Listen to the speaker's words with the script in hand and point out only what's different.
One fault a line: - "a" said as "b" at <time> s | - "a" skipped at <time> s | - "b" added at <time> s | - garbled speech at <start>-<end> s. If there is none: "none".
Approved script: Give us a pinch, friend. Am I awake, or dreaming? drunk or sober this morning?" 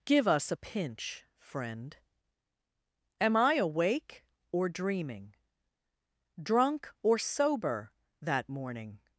- "this" said as "that" at 8.2 s